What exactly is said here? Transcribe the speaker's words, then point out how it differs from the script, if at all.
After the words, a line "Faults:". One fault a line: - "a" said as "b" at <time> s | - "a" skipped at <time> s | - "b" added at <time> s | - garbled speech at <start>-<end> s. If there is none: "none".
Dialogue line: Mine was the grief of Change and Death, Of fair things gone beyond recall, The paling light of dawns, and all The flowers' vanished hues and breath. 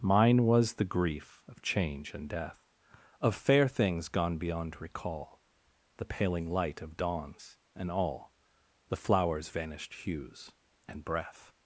Mine was the grief of Change and Death, Of fair things gone beyond recall, The paling light of dawns, and all The flowers' vanished hues and breath.
Faults:
none